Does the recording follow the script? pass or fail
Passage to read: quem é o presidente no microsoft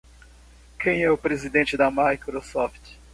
fail